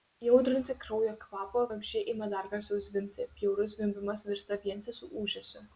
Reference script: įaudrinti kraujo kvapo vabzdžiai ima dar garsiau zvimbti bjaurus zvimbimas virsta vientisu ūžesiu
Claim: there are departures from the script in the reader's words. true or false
false